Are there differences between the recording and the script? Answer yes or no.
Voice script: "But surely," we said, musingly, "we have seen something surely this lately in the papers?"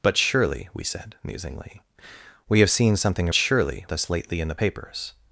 no